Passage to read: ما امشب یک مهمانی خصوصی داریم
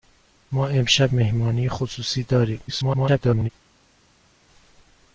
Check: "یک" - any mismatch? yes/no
yes